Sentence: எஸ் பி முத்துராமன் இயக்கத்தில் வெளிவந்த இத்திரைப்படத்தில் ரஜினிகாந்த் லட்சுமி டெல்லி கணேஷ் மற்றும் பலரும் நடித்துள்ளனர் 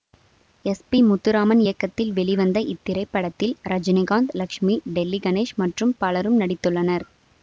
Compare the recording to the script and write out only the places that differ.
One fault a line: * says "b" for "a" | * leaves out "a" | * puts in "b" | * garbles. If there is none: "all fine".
all fine